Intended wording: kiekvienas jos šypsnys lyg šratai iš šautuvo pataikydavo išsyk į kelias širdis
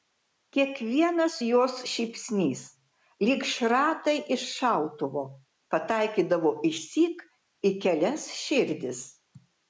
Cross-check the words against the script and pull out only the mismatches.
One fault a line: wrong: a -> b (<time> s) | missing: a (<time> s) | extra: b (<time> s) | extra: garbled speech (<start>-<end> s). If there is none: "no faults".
no faults